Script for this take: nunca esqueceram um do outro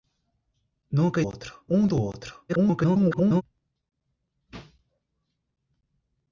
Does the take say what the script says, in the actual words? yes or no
no